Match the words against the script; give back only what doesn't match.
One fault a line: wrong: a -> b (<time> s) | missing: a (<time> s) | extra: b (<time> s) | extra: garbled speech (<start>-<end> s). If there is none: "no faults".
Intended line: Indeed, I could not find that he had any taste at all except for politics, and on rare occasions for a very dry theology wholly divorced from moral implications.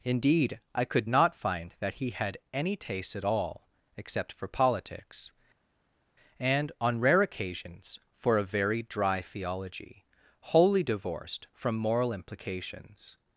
no faults